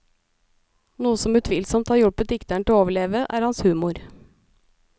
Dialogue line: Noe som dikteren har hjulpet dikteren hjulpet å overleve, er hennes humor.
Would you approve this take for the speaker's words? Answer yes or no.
no